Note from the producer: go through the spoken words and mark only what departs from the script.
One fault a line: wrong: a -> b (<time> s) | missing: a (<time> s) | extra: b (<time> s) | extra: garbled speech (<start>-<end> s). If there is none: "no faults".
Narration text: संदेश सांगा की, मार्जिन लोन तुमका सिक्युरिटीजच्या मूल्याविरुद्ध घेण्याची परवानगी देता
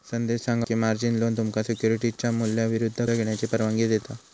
no faults